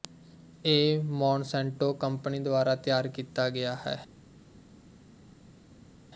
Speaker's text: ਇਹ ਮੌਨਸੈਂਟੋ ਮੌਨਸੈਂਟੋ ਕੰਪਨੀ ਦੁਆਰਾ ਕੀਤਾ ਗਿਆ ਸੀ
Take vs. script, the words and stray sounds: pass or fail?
fail